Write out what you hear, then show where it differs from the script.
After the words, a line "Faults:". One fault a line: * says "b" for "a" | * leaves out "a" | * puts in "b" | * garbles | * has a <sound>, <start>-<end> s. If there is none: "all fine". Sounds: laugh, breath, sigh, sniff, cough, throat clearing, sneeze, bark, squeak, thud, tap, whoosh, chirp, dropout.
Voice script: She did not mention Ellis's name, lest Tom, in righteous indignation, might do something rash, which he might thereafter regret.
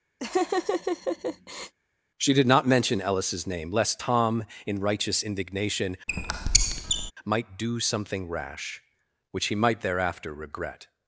She did not mention Ellis's name, lest Tom, in righteous indignation, might do something rash, which he might thereafter regret.
Faults:
* has a laugh, 0.2-1.7 s
* has a squeak, 6.1-7.1 s